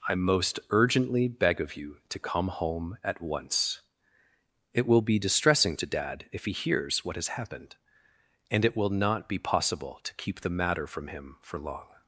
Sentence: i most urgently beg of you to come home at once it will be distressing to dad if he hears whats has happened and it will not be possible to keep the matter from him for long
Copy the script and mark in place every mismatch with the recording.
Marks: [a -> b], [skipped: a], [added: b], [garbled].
i most urgently beg of you to come home at once it will be distressing to dad if he hears [whats -> what] has happened and it will not be possible to keep the matter from him for long